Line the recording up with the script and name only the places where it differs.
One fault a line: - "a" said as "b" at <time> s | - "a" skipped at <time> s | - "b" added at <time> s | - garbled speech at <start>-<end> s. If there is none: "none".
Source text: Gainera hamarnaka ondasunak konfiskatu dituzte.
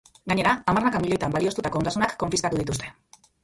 - "milioitan balioztatutako" added at 1.1 s